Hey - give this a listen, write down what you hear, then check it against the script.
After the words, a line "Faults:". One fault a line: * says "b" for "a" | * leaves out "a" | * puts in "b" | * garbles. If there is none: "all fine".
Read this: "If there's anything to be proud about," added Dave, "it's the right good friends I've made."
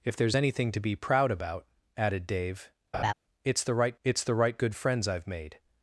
"If there's anything to be proud about," added Dave, "it's the right it's the right good friends I've made."
Faults:
* puts in "it's the right"